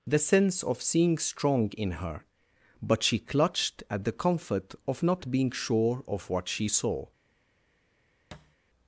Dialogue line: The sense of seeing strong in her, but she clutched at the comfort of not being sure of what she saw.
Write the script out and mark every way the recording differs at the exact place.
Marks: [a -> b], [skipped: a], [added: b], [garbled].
The sense of seeing strong in her, but she clutched at the comfort of not being sure of what she saw.